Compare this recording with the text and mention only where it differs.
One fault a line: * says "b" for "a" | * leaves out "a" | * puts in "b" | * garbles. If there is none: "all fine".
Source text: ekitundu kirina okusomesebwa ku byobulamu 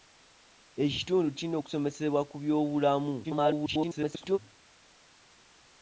* garbles